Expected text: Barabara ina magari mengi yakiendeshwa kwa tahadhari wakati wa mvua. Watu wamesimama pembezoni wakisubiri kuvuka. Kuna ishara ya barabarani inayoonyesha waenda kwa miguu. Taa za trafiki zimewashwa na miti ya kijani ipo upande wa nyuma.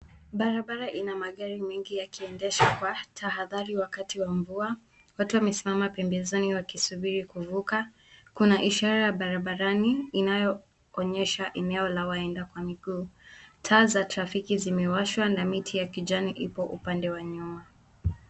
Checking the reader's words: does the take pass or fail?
fail